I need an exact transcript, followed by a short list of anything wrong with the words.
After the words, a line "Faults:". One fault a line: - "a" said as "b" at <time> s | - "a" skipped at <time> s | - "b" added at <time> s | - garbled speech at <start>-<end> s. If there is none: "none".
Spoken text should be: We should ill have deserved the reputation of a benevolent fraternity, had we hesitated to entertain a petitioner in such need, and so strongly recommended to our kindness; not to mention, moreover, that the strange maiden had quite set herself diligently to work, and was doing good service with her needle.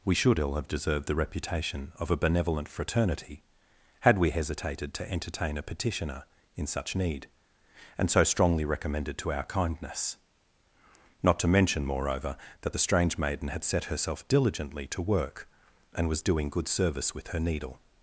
We should ill have deserved the reputation of a benevolent fraternity, had we hesitated to entertain a petitioner in such need, and so strongly recommended to our kindness; not to mention, moreover, that the strange maiden had set herself diligently to work, and was doing good service with her needle.
Faults:
- "quite" skipped at 13.6 s